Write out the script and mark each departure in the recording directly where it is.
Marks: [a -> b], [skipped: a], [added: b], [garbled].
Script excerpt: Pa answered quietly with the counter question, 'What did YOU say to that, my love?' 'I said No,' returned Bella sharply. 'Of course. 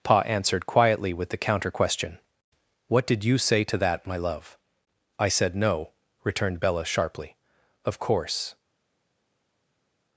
Pa answered quietly with the counter question, 'What did YOU say to that, my love?' 'I said No,' returned Bella sharply. 'Of course.